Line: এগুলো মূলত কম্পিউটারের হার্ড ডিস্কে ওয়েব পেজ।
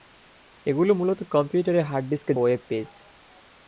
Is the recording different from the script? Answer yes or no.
no